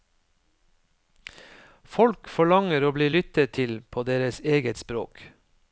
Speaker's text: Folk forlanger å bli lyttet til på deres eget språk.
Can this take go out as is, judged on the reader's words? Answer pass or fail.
pass